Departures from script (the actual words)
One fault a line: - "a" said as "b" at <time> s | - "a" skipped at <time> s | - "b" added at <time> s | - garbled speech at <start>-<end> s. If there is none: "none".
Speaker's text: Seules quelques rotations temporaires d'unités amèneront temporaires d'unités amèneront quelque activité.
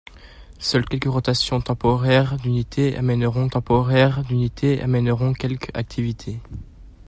none